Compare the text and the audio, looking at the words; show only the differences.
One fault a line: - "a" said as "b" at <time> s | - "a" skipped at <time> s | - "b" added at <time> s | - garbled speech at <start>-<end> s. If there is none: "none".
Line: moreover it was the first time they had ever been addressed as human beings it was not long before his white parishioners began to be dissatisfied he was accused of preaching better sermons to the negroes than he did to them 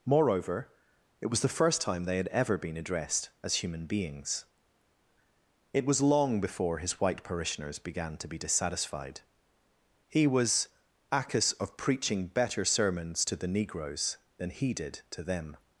- "not" skipped at 6.0 s
- "accused" said as "accus" at 11.1 s